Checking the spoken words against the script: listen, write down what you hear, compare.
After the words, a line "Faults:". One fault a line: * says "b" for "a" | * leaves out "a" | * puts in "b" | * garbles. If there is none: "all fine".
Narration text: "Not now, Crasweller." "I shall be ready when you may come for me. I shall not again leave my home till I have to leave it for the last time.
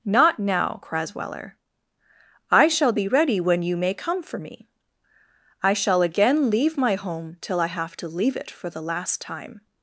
"Not now, Crasweller." "I shall be ready when you may come for me. I shall again leave my home till I have to leave it for the last time.
Faults:
* leaves out "not"